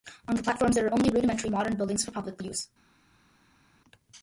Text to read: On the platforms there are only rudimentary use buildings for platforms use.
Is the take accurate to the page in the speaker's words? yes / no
no